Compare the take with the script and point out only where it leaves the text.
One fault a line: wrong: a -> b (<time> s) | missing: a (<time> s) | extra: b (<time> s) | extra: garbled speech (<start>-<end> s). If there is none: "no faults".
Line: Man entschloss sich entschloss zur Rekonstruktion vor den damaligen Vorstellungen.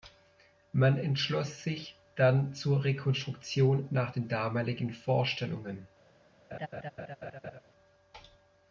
wrong: entschloss -> dann (2.1 s)
wrong: vor -> nach (3.9 s)